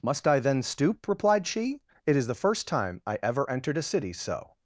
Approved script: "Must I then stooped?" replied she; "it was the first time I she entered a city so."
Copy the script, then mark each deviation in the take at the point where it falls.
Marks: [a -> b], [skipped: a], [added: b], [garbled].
"Must I then [stooped?" -> stoop] replied she; "it [was -> is] the first time I [she -> ever] entered a city so."